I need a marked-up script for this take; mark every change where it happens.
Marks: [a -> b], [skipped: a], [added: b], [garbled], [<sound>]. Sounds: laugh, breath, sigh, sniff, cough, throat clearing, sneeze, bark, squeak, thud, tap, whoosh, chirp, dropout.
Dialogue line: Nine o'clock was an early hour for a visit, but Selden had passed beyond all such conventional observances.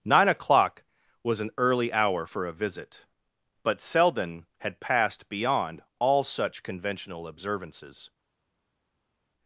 Nine o'clock was an early hour for a visit, but Selden had passed beyond all such conventional observances.